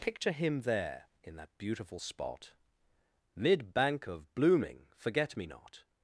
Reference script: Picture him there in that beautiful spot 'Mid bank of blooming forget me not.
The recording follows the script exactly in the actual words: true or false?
true